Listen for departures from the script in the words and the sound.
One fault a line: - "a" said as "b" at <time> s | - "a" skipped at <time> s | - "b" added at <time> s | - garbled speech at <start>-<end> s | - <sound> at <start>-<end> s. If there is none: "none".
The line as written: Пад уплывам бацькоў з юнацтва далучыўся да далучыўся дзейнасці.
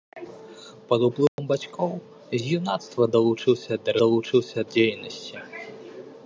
- dropout at 1.3-1.4 s